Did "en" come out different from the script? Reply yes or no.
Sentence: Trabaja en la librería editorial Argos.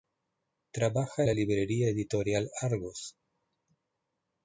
yes